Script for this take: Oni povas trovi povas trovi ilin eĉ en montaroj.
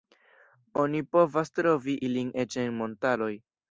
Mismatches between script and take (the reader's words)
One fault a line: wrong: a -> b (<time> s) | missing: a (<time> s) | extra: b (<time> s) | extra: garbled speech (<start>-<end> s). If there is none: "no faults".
missing: povas trovi (2.0 s)